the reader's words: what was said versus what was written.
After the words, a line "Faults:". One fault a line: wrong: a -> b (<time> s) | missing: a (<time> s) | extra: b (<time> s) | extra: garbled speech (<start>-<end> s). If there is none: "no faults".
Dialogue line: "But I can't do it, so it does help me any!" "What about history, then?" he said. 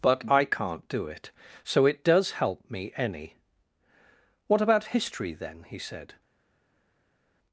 "But I can't do it, so it does help me any!" "What about history, then?" he said.
Faults:
no faults